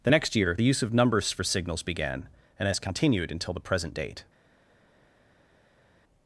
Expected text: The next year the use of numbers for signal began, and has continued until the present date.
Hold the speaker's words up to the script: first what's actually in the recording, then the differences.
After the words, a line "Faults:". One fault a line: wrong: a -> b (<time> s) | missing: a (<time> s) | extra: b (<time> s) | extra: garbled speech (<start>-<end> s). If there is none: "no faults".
The next year the use of numbers for signals began, and has continued until the present date.
Faults:
wrong: signal -> signals (1.4 s)